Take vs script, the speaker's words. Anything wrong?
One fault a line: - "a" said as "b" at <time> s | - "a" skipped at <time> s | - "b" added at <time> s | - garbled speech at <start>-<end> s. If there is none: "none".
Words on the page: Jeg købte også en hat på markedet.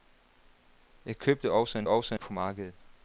- "hat" said as "også" at 1.9 s